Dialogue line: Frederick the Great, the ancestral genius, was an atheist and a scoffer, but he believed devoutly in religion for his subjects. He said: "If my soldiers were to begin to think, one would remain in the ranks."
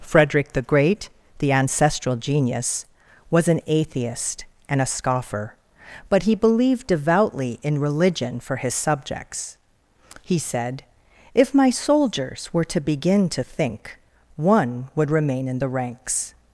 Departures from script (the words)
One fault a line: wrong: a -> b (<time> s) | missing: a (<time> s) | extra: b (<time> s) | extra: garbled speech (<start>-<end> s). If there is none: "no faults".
no faults